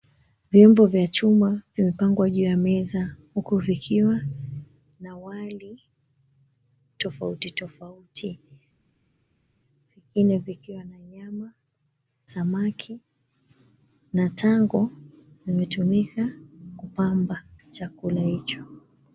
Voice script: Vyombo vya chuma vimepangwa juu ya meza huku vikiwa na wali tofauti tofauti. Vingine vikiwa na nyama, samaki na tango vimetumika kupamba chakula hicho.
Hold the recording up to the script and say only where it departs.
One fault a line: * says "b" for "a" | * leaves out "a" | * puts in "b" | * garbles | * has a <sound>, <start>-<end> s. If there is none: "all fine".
all fine